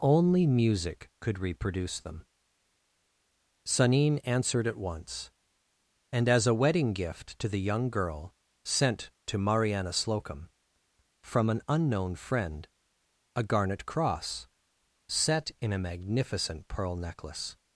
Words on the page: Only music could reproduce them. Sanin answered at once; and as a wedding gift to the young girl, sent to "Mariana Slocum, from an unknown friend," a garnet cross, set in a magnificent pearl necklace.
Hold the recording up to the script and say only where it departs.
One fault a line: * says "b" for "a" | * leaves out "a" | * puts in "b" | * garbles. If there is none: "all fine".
all fine